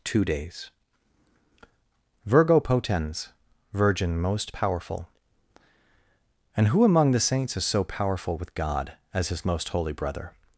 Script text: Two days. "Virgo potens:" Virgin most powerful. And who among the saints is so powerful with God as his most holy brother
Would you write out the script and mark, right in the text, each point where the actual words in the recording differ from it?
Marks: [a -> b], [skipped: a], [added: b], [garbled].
Two days. "Virgo potens:" Virgin most powerful. And who among the saints is so powerful with God as his most holy brother